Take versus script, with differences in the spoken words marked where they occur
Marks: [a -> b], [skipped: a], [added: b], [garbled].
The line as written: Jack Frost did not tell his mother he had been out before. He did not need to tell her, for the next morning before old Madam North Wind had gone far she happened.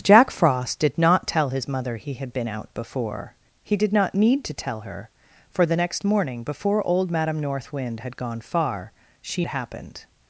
Jack Frost did not tell his mother he had been out before. He did not need to tell her, for the next morning before old Madam North Wind had gone far she happened.